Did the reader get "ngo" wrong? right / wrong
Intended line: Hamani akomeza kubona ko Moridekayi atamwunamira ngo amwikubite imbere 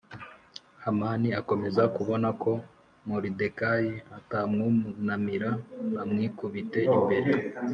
wrong